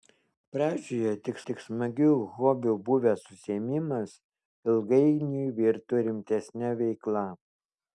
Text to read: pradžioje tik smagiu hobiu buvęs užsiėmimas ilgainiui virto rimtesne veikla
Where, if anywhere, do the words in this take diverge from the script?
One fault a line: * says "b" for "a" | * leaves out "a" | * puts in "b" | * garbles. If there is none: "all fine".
* puts in "tik"